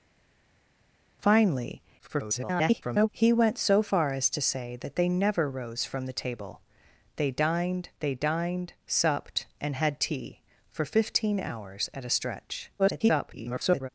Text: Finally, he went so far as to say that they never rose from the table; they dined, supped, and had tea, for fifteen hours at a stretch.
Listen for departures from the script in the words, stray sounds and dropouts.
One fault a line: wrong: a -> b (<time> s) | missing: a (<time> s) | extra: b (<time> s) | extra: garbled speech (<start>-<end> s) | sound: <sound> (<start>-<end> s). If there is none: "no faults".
extra: garbled speech (2.0-3.1 s)
extra: they dined (8.0 s)
extra: garbled speech (12.8-13.9 s)